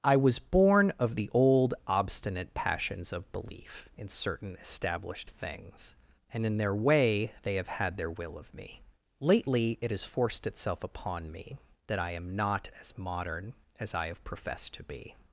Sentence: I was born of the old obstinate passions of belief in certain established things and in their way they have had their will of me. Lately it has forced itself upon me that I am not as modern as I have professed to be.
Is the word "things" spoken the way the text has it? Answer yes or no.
yes